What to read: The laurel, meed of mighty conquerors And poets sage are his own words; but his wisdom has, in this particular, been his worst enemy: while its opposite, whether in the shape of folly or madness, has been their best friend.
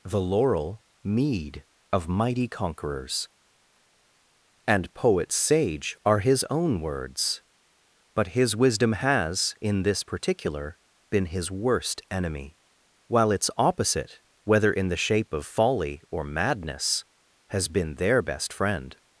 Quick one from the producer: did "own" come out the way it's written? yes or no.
yes